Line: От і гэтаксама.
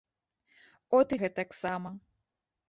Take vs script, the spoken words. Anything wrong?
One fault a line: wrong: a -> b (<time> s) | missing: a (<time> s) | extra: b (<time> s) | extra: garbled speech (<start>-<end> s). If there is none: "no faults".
no faults